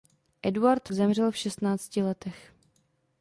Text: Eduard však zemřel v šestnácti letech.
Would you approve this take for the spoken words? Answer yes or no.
no